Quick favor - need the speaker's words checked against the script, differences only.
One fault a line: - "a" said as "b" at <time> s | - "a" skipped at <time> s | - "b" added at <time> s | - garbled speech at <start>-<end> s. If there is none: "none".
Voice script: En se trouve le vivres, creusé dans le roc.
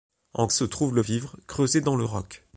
none